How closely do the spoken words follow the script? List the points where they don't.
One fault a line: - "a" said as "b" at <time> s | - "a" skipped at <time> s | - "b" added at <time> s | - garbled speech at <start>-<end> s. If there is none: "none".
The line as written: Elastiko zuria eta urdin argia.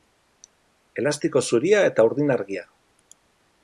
none